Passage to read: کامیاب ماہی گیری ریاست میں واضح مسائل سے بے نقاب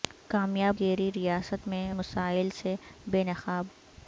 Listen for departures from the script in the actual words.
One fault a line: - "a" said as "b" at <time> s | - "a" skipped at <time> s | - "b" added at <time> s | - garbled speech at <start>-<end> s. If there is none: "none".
- "ماہی" skipped at 0.8 s
- "واضح" skipped at 1.9 s